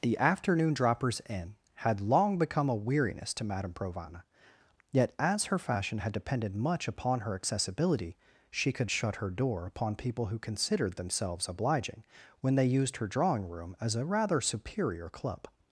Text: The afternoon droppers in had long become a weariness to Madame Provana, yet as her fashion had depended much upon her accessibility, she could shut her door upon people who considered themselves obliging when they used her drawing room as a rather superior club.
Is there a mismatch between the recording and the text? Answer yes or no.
no